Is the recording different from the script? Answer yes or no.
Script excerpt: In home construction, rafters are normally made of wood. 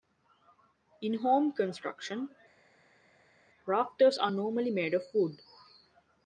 no